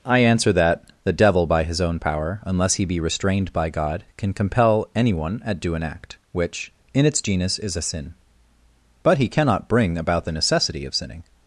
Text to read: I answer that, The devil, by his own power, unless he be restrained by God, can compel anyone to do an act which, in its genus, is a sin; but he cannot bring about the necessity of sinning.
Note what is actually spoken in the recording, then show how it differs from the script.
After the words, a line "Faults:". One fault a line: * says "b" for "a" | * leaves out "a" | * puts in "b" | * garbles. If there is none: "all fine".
I answer that, The devil, by his own power, unless he be restrained by God, can compel anyone at do an act which, in its genus, is a sin; but he cannot bring about the necessity of sinning.
Faults:
* says "at" for "to"